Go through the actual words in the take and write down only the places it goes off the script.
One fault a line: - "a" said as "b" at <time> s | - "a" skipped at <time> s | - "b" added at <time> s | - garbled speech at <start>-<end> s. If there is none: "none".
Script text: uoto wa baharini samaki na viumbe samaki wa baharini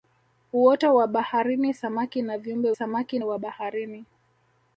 none